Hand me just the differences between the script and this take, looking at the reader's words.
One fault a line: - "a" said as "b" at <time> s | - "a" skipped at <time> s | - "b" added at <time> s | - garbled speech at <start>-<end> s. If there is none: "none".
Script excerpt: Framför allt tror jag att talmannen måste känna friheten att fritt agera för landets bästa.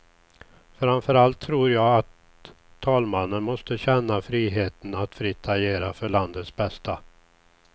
none